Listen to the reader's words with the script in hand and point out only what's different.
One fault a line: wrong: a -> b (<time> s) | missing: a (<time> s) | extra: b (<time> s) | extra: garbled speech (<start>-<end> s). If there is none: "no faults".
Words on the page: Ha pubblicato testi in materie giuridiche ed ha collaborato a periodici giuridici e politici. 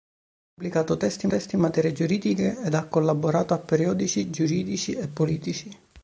extra: testi (1.3 s)